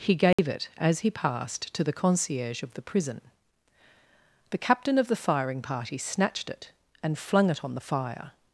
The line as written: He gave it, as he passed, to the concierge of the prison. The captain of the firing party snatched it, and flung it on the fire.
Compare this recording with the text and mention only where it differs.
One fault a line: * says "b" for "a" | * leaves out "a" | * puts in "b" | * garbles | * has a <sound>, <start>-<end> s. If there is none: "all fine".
* has a dropout, 0.3-0.4 s